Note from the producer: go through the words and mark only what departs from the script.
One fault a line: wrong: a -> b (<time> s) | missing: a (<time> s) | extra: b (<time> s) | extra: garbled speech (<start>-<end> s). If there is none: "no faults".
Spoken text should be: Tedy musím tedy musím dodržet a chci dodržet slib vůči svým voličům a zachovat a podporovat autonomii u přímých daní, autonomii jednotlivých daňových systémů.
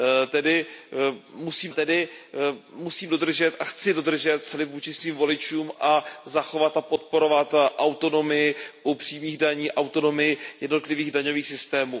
no faults